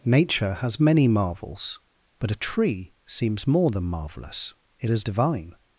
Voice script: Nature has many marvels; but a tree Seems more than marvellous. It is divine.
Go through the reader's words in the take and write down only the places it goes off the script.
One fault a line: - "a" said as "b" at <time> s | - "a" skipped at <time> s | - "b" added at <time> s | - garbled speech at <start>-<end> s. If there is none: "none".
none